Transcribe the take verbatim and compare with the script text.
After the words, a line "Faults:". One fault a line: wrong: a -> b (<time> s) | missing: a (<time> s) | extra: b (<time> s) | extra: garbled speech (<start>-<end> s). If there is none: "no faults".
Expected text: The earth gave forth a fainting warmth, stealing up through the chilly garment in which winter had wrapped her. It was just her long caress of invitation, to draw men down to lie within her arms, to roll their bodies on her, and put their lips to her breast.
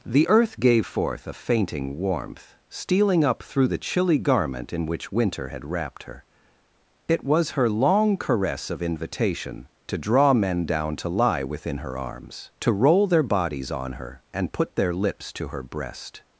The earth gave forth a fainting warmth, stealing up through the chilly garment in which winter had wrapped her. It was her long caress of invitation, to draw men down to lie within her arms, to roll their bodies on her, and put their lips to her breast.
Faults:
missing: just (7.5 s)